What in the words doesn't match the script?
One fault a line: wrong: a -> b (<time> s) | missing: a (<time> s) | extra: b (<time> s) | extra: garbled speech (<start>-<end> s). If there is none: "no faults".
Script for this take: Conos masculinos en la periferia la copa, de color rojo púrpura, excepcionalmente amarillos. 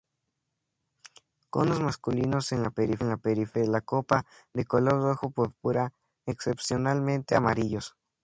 extra: de (3.5 s)